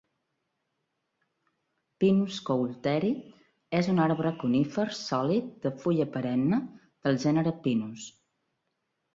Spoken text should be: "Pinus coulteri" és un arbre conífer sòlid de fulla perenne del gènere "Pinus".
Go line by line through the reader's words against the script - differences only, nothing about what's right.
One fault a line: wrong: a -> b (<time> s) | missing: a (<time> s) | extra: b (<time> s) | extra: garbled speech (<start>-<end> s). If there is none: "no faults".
no faults